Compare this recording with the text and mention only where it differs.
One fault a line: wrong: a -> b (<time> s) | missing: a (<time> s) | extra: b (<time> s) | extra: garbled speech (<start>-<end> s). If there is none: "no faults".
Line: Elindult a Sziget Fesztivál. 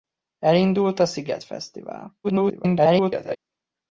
extra: garbled speech (2.2-3.4 s)